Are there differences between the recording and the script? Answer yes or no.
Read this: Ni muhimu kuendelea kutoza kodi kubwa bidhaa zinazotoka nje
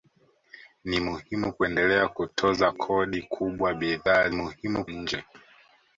yes